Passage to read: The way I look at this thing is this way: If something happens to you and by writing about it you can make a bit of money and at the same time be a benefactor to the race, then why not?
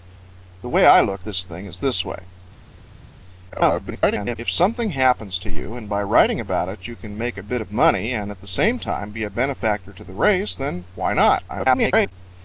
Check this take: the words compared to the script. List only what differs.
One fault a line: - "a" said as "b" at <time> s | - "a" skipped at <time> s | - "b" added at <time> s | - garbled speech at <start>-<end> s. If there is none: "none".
- "at" skipped at 1.2 s
- garbled speech at 3.5-4.4 s
- garbled speech at 11.5-12.1 s